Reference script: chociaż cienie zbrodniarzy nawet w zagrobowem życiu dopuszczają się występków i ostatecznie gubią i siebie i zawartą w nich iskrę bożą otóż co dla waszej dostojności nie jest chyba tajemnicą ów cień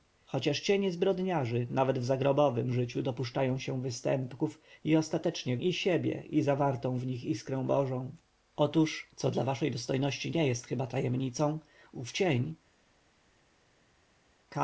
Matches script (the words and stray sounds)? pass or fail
fail